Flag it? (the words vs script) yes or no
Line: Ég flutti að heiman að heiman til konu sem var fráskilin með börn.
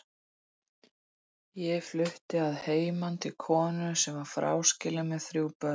yes